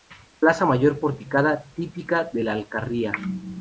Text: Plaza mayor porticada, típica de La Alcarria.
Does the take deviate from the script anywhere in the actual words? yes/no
no